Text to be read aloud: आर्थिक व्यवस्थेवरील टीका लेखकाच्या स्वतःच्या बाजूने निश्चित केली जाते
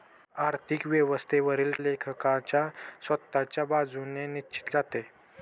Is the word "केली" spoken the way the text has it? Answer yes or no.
no